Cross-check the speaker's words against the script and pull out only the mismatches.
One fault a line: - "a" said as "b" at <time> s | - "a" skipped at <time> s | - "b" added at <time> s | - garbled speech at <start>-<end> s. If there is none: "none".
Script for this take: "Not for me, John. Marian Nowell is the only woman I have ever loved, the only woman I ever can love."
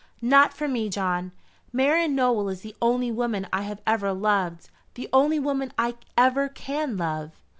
none